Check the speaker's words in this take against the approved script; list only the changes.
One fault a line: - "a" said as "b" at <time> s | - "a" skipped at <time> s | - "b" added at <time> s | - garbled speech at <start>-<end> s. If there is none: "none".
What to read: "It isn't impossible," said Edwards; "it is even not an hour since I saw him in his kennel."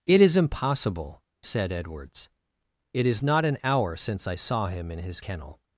- "isn't" said as "is" at 0.2 s
- "even" skipped at 3.2 s